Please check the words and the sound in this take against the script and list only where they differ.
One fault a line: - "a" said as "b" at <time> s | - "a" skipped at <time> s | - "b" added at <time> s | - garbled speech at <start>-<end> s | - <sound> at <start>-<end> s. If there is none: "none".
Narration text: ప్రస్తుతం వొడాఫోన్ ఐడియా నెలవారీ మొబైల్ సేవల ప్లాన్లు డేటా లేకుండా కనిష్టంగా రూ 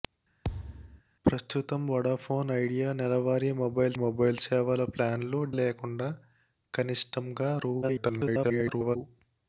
- thud at 0.4-1.0 s
- "మొబైల్" added at 4.0 s
- "డేటా" skipped at 5.4 s
- garbled speech at 7.8-9.0 s